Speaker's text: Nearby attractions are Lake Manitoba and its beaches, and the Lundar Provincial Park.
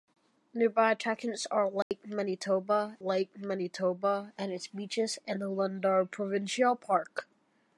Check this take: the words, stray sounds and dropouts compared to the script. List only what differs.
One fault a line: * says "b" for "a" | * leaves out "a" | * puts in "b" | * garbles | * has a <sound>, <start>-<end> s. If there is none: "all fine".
* has a dropout, 1.8-1.9 s
* puts in "Lake Manitoba"